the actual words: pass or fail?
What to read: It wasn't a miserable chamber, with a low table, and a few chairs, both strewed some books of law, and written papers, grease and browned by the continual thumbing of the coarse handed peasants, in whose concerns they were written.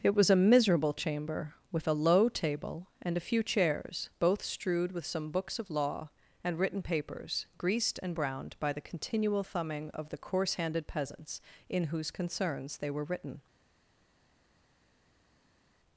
fail